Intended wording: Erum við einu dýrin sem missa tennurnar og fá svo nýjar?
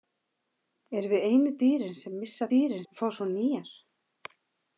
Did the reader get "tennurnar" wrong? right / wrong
wrong